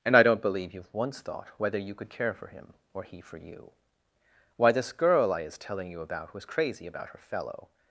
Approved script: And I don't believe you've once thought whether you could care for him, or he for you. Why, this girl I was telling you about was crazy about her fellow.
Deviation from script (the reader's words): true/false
true